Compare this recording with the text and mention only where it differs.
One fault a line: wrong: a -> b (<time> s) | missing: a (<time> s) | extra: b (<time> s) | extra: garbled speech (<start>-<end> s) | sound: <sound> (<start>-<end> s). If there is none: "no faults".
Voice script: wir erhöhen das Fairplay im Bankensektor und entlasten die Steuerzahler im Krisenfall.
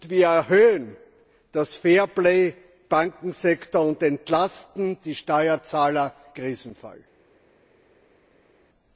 missing: im (2.5 s)
missing: im (6.1 s)